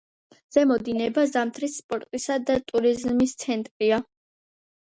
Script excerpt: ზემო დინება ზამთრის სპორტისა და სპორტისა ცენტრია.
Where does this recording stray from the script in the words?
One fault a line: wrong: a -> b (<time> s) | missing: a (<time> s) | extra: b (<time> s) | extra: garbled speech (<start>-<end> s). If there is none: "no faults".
wrong: სპორტისა -> ტურიზმის (2.7 s)